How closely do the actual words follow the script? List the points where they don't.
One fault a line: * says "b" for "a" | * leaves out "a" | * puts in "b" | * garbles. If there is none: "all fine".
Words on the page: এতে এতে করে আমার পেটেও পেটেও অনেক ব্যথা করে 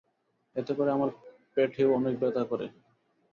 * leaves out "এতে"
* leaves out "পেটেও"